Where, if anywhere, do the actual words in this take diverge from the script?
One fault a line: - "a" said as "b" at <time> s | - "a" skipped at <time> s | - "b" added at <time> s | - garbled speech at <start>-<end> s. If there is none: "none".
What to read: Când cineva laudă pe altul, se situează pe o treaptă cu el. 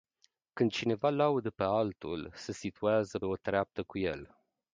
- "pe" skipped at 3.2 s